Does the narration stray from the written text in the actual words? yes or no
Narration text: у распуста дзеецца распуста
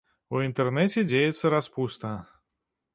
yes